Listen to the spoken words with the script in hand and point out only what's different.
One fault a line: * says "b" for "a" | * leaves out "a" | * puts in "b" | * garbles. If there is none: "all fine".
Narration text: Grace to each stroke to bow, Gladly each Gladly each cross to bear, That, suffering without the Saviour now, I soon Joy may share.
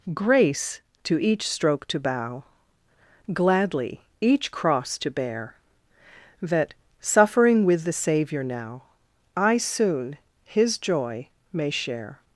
* leaves out "Gladly each"
* says "with" for "without"
* puts in "His"